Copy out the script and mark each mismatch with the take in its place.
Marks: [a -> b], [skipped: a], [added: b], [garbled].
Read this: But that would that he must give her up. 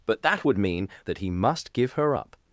But that would [added: mean] that he must give her up.